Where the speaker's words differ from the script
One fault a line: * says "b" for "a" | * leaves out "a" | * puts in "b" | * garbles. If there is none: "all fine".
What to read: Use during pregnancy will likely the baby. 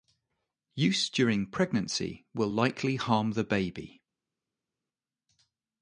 * puts in "harm"